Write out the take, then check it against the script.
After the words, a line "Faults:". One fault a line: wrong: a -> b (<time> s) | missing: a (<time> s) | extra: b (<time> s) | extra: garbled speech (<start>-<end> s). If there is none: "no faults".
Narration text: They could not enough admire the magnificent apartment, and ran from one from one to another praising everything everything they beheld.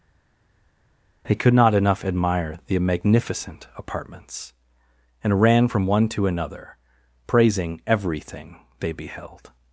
They could not enough admire the magnificent apartments, and ran from one to another praising everything they beheld.
Faults:
wrong: apartment -> apartments (3.8 s)
missing: from one (6.1 s)
missing: everything (8.6 s)